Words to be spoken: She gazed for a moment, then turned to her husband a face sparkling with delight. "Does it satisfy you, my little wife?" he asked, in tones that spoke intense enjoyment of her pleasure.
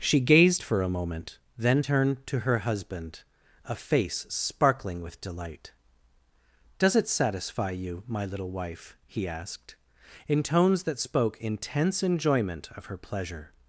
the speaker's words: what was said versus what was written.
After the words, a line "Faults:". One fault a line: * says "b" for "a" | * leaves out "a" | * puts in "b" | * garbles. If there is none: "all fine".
She gazed for a moment, then turned to her husband a face sparkling with delight. "Does it satisfy you, my little wife?" he asked, in tones that spoke intense enjoyment of her pleasure.
Faults:
all fine